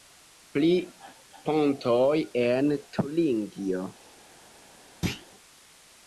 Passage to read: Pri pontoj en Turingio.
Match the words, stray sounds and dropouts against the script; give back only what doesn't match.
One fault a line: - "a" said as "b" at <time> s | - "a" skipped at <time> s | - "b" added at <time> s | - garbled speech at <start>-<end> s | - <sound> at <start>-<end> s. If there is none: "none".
- thud at 5.0-5.3 s